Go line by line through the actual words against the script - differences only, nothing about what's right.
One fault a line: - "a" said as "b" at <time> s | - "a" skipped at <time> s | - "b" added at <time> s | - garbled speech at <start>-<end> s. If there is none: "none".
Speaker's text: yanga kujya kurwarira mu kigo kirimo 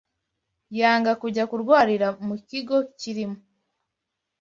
none